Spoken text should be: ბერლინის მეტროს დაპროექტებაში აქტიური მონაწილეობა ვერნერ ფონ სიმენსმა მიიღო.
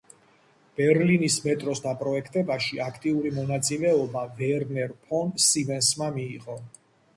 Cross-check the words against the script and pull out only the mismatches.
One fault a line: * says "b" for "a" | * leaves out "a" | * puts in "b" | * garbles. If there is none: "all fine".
all fine